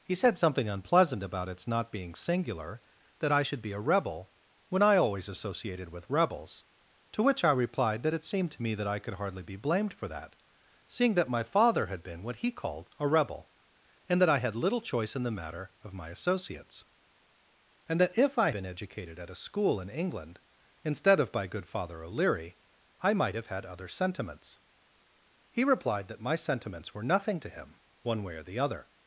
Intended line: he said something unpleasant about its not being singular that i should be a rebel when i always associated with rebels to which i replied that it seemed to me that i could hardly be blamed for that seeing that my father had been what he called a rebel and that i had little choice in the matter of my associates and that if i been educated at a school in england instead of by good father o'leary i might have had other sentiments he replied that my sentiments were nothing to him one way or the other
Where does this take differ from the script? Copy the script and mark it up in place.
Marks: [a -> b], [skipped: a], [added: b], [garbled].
he said something unpleasant about its not being singular that i should be a rebel when i always associated with rebels to which i replied that it seemed to me that i could hardly be blamed for that seeing that my father had been what he called a rebel and that i had little choice in the matter of my associates and that if i been educated at a school in england instead of by good father o'leary i might have had other sentiments he replied that my sentiments were nothing to him one way or the other